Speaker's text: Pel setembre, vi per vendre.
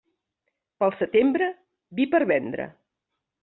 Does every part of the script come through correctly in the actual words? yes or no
yes